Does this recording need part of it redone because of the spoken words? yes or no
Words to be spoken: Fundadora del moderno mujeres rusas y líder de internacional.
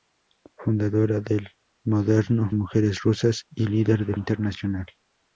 no